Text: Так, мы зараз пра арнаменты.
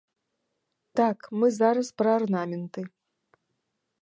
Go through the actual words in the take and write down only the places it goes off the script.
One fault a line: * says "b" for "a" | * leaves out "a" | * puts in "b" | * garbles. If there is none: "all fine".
all fine